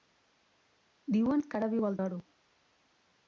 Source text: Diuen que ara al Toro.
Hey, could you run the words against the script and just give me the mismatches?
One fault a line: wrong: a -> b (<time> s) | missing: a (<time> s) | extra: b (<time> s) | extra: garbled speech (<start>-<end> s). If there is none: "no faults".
extra: viu (1.8 s)